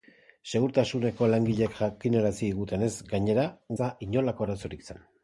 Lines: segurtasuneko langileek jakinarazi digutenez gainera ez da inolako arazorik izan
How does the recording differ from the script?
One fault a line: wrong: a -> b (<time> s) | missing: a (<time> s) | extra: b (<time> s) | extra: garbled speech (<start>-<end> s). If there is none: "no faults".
no faults